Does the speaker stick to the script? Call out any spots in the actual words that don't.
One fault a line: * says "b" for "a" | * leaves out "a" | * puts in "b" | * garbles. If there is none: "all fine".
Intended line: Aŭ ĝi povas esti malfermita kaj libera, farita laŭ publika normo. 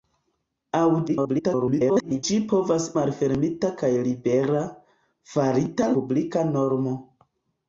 * garbles
* leaves out "esti"
* leaves out "laŭ"